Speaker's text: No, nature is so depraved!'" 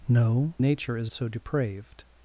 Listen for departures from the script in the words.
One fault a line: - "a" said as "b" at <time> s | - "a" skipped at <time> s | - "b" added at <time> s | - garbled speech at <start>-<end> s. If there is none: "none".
none